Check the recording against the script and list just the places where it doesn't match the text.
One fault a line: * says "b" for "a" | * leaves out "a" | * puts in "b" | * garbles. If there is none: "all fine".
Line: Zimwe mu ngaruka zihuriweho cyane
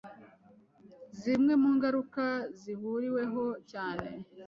all fine